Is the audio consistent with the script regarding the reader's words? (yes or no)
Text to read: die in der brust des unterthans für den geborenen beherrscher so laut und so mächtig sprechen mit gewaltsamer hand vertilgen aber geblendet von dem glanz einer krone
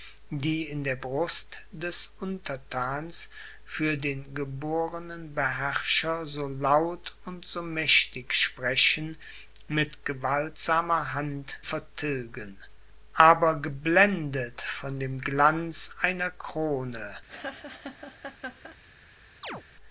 yes